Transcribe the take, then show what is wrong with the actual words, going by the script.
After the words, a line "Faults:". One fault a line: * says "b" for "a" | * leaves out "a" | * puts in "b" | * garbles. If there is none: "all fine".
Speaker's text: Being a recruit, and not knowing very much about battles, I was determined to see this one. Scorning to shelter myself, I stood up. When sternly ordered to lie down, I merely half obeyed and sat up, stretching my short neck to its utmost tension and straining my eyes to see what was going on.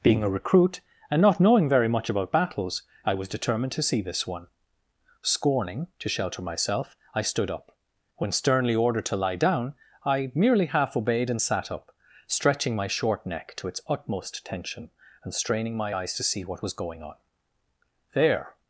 Being a recruit, and not knowing very much about battles, I was determined to see this one. Scorning to shelter myself, I stood up. When sternly ordered to lie down, I merely half obeyed and sat up, stretching my short neck to its utmost tension and straining my eyes to see what was going on. There
Faults:
* puts in "There"